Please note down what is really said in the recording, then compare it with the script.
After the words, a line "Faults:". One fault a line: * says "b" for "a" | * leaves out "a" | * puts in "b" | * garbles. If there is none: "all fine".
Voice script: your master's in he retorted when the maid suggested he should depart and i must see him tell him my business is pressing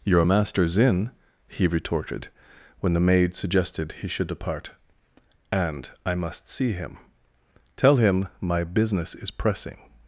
your master's in he retorted when the maid suggested he should depart and i must see him tell him my business is pressing
Faults:
all fine